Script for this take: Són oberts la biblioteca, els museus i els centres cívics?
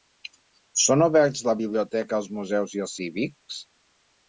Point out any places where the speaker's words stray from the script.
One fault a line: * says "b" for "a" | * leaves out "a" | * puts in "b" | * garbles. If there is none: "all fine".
* leaves out "centres"